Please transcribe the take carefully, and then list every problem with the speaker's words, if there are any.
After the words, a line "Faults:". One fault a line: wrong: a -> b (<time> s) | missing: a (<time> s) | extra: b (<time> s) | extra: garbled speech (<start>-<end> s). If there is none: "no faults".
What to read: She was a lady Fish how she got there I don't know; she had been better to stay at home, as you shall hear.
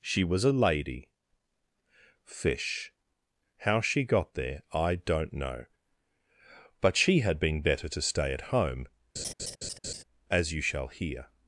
She was a lady Fish how she got there I don't know; but she had been better to stay at home, as you shall hear.
Faults:
extra: but (6.8 s)